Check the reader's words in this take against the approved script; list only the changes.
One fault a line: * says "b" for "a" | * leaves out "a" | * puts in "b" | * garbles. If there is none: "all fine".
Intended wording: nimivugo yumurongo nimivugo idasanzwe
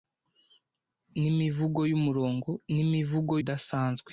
all fine